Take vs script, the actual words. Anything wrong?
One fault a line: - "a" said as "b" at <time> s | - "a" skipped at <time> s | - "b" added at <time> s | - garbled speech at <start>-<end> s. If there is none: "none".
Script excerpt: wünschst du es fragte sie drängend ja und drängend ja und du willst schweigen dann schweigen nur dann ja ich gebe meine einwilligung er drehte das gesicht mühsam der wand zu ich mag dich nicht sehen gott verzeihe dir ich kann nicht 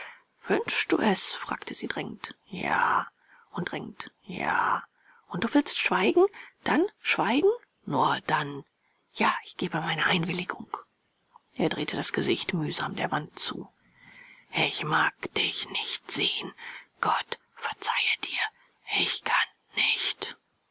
none